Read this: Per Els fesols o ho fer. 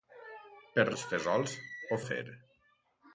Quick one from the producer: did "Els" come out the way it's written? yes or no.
yes